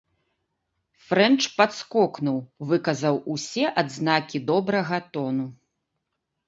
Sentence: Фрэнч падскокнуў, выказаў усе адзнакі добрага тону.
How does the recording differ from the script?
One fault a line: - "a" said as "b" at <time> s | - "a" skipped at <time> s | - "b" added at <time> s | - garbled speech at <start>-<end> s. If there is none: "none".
none